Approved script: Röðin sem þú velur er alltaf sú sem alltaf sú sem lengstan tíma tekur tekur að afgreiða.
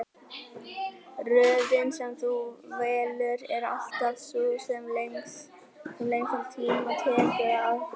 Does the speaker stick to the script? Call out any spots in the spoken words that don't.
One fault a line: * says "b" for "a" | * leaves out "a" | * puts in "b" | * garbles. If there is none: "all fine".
* leaves out "alltaf sú sem"
* leaves out "tekur"